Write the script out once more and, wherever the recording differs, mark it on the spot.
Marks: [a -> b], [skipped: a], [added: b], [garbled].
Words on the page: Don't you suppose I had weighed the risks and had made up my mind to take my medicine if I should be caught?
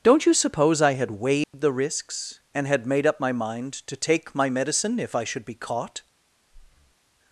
Don't you suppose I had weighed the risks and had made up my mind to take my medicine if I should be caught?